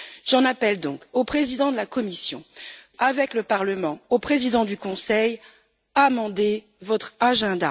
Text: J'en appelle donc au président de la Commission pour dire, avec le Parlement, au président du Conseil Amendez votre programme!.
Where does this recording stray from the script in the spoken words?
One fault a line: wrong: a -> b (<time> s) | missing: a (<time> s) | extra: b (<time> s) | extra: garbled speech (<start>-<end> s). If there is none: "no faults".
missing: pour dire (2.4 s)